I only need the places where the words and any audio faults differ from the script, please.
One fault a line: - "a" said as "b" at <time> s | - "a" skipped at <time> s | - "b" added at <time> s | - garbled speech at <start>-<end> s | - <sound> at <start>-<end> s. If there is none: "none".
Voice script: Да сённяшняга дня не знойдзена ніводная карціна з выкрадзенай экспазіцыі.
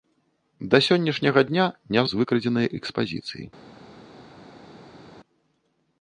- "знойдзена ніводная карціна" skipped at 2.0 s